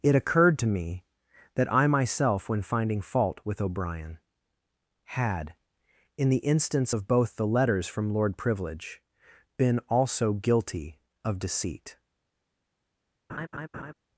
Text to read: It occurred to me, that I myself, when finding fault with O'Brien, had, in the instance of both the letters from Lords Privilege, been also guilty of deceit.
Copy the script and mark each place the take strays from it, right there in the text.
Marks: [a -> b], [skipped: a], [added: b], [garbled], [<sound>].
It occurred to me, that I myself, when finding fault with O'Brien, had, in the instance of both the letters from [Lords -> Lord] Privilege, been also guilty of deceit. [laugh]